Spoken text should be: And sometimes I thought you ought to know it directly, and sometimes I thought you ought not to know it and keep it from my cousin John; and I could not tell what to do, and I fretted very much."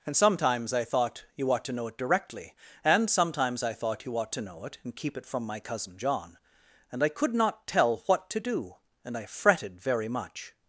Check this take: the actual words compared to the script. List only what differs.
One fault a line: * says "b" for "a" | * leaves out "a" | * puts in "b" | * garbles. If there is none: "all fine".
* leaves out "not"